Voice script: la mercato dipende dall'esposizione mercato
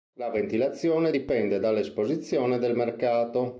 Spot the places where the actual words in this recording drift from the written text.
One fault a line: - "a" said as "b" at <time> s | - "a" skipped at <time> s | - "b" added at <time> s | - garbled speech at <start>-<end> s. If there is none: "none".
- "mercato" said as "ventilazione" at 0.3 s
- "del" added at 2.6 s